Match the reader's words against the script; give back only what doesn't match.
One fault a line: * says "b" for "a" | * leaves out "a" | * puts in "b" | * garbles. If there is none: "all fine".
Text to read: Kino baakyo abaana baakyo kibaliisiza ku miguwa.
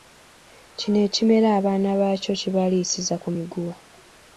* says "ekimera" for "baakyo"